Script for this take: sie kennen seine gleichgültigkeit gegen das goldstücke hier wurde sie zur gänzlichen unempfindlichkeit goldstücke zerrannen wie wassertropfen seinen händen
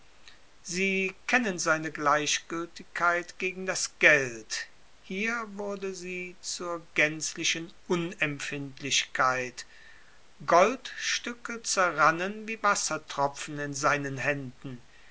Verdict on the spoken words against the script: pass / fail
fail